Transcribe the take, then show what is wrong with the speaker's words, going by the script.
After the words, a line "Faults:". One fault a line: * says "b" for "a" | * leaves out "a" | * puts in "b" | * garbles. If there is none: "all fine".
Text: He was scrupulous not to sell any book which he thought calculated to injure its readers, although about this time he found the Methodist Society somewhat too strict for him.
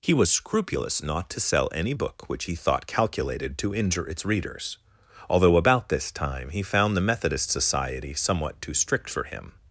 He was scrupulous not to sell any book which he thought calculated to injure its readers, although about this time he found the Methodist Society somewhat too strict for him.
Faults:
all fine